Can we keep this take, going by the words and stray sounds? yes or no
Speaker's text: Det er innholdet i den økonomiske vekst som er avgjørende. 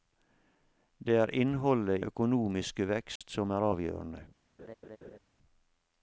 no